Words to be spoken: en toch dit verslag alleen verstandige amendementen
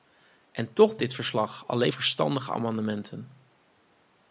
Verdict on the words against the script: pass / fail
pass